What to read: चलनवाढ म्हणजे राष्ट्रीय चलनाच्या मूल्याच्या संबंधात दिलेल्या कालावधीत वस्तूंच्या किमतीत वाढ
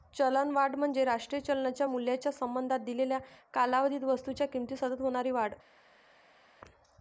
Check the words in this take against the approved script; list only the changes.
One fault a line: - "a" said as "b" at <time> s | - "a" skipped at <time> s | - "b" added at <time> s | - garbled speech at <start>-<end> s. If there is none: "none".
- "सतत होणारी" added at 4.7 s